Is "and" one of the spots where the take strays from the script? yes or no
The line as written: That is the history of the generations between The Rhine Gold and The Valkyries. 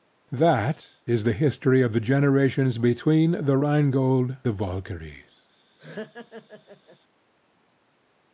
yes